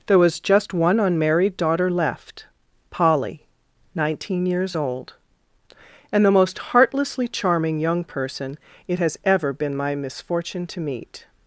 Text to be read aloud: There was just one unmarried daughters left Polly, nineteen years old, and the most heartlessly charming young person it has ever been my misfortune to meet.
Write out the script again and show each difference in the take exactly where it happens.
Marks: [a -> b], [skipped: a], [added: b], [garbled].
There was just one unmarried [daughters -> daughter] left Polly, nineteen years old, and the most heartlessly charming young person it has ever been my misfortune to meet.